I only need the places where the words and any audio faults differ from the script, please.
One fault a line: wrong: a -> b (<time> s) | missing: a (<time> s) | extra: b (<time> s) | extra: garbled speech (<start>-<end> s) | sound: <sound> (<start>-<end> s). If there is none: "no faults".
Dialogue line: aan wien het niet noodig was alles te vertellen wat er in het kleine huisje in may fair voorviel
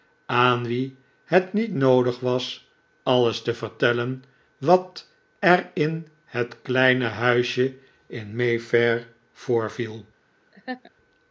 sound: laugh (10.5-10.9 s)